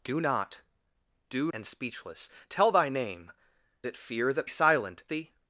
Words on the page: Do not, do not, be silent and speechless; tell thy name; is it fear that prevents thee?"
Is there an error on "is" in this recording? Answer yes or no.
yes